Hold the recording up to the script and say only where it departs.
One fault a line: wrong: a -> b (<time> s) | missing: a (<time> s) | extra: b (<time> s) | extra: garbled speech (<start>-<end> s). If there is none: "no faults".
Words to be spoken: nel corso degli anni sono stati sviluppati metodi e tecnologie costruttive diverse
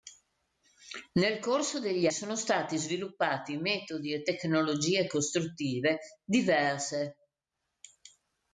missing: anni (2.1 s)